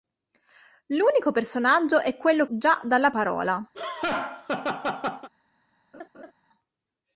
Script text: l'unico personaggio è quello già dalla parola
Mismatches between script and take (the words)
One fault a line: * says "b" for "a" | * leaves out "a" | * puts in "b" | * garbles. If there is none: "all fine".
all fine